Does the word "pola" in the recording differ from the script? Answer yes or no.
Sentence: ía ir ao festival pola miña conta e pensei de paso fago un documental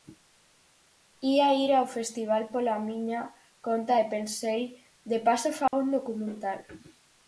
no